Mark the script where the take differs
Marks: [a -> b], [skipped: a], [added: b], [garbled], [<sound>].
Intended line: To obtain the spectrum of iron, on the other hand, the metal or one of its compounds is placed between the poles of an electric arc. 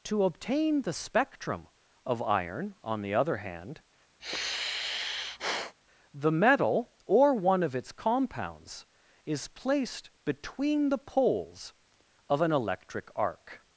To obtain the spectrum of iron, on the other hand, [sigh] the metal or one of its compounds is placed between the poles of an electric arc.